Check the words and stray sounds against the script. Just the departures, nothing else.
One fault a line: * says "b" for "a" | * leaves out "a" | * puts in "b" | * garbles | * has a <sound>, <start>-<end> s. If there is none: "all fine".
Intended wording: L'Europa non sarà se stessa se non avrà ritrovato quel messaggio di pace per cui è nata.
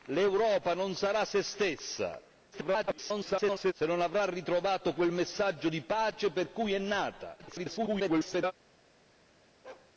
* garbles
* garbles
* has a bark, 9.6-9.9 s